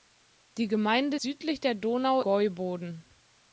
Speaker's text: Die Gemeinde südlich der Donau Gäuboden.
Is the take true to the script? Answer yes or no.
yes